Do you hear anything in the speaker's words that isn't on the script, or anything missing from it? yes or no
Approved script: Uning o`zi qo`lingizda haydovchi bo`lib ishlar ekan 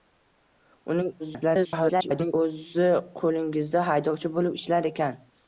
yes